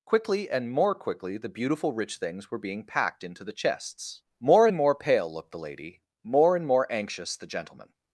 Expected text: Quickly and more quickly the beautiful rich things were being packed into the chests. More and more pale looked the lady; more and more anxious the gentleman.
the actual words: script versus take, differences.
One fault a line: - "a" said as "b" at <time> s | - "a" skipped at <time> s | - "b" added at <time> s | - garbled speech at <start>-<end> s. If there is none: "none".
none